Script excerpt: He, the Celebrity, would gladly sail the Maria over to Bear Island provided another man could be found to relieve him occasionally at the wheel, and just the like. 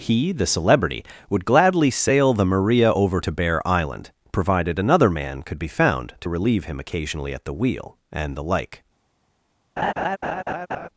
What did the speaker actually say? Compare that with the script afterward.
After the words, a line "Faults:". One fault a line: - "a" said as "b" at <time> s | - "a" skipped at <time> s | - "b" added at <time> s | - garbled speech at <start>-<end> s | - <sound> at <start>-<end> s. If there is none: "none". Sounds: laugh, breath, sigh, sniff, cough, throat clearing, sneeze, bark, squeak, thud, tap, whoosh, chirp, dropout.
He, the Celebrity, would gladly sail the Maria over to Bear Island provided another man could be found to relieve him occasionally at the wheel, and the like.
Faults:
- "just" skipped at 8.4 s
- laugh at 9.8-10.9 s